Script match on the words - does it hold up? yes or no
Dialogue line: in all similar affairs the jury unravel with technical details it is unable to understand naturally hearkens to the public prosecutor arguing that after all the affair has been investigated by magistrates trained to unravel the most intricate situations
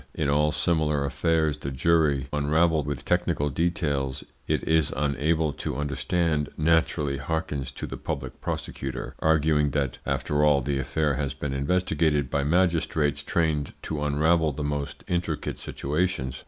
yes